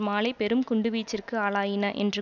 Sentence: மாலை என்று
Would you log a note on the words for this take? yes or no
yes